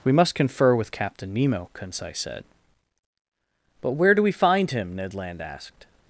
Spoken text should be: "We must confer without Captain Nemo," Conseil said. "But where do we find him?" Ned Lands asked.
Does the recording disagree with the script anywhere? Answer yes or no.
yes